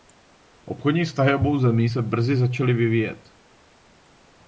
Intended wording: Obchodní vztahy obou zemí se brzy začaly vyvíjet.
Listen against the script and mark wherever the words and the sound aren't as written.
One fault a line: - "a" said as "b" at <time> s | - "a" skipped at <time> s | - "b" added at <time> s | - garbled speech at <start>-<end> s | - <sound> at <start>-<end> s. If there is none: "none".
none